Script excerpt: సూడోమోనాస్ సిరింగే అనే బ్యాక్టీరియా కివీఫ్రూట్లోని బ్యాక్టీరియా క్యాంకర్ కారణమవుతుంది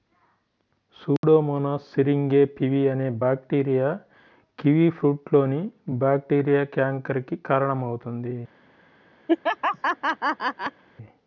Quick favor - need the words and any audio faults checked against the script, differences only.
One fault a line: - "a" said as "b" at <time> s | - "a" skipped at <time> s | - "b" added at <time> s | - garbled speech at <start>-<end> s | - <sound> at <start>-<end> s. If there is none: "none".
- dropout at 1.2-1.2 s
- "పివి" added at 2.5 s
- "కి" added at 7.2 s
- laugh at 9.3-10.8 s